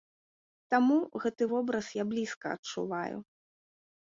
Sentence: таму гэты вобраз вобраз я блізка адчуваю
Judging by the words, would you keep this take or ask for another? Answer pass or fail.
fail